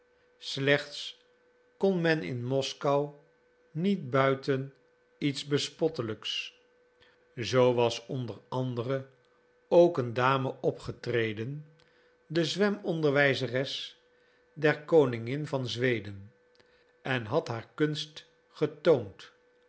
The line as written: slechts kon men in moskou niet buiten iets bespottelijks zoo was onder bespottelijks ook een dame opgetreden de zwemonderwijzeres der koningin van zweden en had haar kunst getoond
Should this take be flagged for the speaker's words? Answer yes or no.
yes